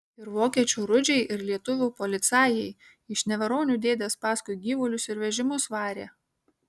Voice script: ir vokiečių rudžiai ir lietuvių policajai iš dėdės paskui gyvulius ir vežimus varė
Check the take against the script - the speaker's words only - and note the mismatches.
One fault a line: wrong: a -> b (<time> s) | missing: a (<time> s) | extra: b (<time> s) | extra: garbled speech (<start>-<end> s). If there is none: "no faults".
extra: neveronių (3.3 s)